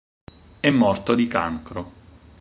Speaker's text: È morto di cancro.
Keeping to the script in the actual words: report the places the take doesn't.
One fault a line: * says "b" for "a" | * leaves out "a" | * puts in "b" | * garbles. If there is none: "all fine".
all fine